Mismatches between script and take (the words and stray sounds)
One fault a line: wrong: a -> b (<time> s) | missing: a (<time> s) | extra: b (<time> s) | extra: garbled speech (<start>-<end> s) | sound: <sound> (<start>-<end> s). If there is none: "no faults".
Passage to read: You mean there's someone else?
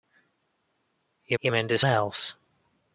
extra: you (1.4 s)
missing: someone (1.8 s)